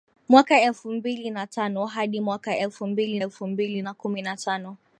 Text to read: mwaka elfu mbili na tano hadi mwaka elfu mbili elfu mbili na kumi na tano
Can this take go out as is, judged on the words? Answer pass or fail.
pass